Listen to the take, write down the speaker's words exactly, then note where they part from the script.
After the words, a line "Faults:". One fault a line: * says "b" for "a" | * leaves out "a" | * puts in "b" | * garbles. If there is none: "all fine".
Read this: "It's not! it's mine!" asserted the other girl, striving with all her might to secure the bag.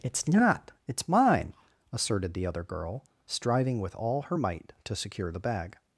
"It's not! it's mine!" asserted the other girl, striving with all her might to secure the bag.
Faults:
all fine